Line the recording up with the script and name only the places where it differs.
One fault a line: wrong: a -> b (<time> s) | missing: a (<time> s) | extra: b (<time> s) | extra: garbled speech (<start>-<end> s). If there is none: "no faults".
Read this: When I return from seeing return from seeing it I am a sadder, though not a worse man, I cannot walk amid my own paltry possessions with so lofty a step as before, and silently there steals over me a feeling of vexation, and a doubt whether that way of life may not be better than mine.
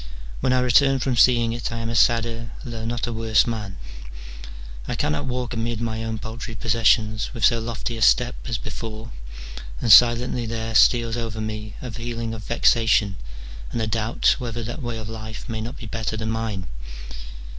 missing: return from seeing (1.5 s)